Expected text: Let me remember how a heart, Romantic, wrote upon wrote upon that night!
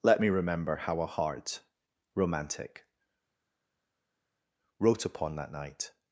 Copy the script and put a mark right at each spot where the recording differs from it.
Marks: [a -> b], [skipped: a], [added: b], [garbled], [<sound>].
Let me remember how a heart, Romantic, wrote upon [skipped: wrote upon] that night!